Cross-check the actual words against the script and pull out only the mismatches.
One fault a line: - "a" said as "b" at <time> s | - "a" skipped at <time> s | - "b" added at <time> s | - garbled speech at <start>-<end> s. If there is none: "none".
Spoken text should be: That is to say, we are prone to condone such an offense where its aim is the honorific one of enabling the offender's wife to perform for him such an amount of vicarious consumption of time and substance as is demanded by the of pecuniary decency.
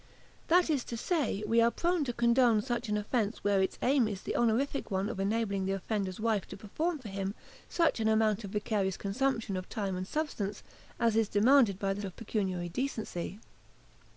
none